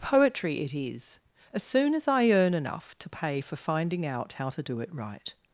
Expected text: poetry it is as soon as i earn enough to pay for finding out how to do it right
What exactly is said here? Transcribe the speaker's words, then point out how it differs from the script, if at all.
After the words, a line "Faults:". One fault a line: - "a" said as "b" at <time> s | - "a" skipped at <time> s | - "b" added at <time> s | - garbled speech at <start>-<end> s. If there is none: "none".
poetry it is as soon as i earn enough to pay for finding out how to do it right
Faults:
none